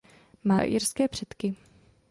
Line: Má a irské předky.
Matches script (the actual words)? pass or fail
pass